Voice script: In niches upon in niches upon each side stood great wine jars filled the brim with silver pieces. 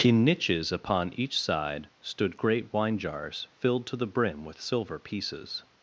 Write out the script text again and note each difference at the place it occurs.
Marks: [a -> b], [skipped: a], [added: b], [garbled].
In niches upon [skipped: in niches upon] each side stood great wine jars filled [added: to] the brim with silver pieces.